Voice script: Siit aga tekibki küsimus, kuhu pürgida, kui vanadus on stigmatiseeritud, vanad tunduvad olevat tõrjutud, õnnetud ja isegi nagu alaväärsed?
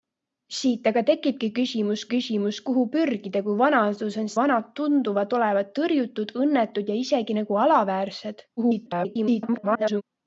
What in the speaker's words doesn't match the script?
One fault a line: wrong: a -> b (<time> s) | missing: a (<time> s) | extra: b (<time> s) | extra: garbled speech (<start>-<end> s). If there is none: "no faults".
extra: küsimus (2.1 s)
missing: stigmatiseeritud (4.3 s)
extra: garbled speech (8.6-10.0 s)